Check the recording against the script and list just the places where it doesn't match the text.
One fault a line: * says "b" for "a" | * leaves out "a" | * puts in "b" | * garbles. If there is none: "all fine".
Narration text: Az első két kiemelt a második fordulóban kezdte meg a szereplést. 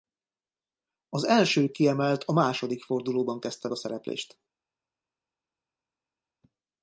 * leaves out "két"
* leaves out "meg"